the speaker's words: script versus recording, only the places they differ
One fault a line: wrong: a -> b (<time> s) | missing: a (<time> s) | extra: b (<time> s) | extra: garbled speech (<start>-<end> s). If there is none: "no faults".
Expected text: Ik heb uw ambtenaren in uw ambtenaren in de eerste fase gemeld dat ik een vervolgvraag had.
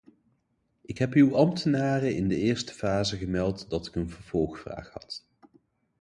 missing: uw ambtenaren in (2.3 s)